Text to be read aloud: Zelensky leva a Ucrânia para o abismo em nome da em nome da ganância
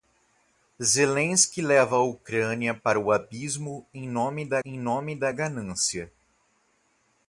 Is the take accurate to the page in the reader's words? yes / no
yes